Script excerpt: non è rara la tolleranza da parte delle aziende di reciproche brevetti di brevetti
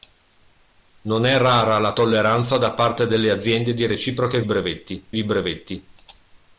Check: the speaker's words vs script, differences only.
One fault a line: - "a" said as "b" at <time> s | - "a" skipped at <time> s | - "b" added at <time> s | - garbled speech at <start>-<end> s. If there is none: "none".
none